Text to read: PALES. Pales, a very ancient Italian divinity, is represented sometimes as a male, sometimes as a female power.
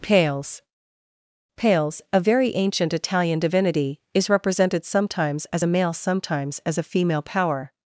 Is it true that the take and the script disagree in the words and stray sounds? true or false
false